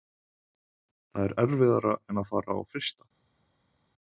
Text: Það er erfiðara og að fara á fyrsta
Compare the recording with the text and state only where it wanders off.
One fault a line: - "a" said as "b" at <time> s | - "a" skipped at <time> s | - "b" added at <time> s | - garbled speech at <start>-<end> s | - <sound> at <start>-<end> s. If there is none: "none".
- "og" said as "en" at 2.1 s